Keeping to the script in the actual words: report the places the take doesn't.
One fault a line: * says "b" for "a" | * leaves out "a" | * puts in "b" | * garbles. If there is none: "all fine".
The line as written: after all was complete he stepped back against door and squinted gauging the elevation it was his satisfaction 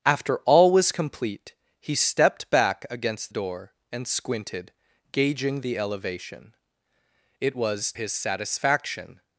all fine